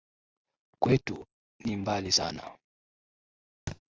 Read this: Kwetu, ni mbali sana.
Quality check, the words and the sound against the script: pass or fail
fail